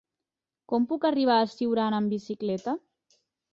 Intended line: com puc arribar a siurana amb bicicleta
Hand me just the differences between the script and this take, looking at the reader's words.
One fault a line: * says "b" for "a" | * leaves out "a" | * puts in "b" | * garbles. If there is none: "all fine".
all fine